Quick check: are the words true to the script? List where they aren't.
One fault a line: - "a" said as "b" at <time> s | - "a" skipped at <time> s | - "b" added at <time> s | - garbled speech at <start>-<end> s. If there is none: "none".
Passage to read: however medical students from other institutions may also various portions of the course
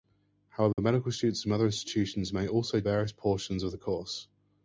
none